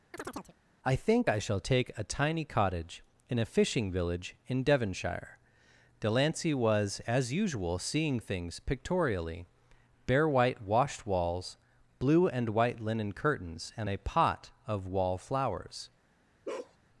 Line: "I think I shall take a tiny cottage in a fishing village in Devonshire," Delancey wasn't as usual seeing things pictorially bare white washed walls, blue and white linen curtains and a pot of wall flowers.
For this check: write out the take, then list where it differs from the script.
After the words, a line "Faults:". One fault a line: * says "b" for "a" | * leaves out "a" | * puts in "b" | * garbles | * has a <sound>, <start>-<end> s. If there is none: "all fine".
"I think I shall take a tiny cottage in a fishing village in Devonshire," Delancey was as usual seeing things pictorially bare white washed walls, blue and white linen curtains and a pot of wall flowers.
Faults:
* has a chirp, 0.1-0.6 s
* says "was" for "wasn't"
* has a bark, 16.4-16.8 s